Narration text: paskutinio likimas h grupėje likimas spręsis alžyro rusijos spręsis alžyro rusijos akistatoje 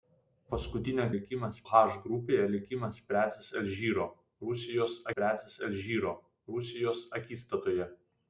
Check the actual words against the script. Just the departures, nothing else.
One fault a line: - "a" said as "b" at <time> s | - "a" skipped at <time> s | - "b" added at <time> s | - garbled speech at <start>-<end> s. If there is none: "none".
none